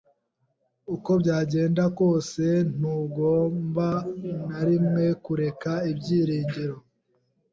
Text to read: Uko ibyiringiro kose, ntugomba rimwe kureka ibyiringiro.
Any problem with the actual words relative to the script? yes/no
yes